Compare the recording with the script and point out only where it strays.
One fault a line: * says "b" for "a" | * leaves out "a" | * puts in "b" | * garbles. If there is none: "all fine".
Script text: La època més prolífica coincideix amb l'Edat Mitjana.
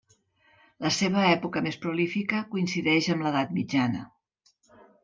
* puts in "seva"